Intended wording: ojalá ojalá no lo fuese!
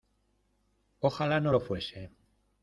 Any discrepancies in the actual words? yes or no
yes